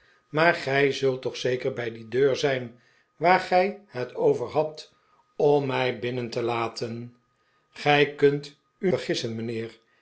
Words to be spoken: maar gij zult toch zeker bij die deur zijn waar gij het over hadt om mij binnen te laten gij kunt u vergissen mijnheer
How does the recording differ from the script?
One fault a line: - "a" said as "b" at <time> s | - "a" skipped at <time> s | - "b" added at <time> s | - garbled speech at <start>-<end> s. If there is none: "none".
none